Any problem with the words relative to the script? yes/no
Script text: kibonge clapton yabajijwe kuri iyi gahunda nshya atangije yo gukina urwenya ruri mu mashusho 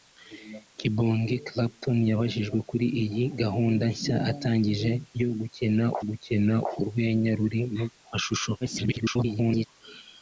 yes